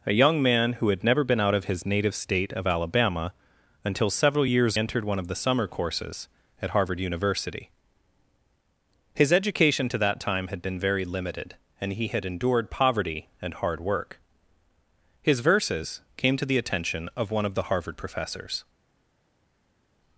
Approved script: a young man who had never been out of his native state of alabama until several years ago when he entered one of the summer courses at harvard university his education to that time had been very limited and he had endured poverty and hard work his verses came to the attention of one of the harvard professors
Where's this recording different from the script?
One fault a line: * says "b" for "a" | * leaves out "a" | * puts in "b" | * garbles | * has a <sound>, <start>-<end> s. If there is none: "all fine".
* leaves out "ago when he"